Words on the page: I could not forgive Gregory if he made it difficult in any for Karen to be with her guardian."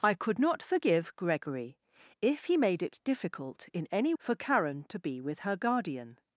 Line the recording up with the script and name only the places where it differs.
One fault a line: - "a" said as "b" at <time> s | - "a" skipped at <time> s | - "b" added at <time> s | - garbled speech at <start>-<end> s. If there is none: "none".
none